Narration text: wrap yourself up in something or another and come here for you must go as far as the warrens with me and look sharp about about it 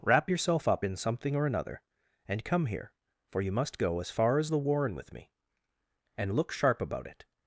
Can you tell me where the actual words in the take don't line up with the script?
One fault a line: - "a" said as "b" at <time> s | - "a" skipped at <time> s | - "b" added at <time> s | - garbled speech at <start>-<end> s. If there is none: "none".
- "warrens" said as "warren" at 4.6 s
- "about" skipped at 7.1 s